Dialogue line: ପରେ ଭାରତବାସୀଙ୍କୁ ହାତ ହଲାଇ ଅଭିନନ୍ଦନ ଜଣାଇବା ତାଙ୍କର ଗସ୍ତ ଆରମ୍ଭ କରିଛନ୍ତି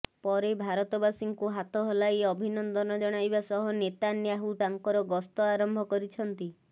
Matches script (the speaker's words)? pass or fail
fail